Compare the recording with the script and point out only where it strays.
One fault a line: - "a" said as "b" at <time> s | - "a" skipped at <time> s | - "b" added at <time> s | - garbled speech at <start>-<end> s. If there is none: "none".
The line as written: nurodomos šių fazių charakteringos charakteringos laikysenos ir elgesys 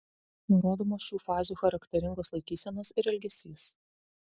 - "charakteringos" skipped at 2.4 s